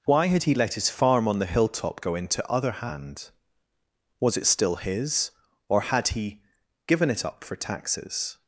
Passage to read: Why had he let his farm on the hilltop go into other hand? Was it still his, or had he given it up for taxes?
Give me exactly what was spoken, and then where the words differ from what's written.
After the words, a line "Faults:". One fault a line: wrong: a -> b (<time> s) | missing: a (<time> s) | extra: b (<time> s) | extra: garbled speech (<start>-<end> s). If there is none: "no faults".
Why had he let his farm on the hilltop go into other hand? Was it still his, or had he given it up for taxes?
Faults:
no faults